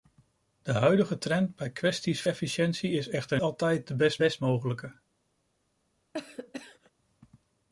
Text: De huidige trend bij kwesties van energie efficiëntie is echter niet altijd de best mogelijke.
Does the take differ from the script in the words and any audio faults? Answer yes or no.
yes